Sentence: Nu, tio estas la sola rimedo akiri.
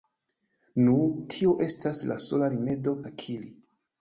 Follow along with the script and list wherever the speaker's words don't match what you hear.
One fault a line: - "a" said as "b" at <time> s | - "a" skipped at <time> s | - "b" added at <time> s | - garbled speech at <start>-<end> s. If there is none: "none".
none